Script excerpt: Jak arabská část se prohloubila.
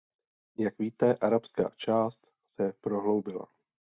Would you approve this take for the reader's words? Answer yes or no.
no